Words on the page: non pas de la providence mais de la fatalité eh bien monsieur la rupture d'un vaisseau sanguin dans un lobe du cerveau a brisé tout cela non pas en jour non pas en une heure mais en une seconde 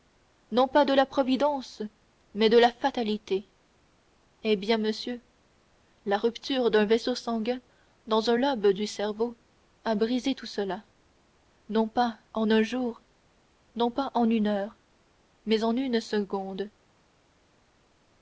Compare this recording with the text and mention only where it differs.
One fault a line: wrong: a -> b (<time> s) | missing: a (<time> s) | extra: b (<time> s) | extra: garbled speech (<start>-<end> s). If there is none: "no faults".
extra: un (12.5 s)